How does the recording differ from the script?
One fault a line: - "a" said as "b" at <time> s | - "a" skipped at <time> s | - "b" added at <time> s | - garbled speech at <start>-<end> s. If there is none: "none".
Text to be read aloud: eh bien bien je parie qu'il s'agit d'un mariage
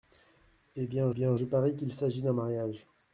none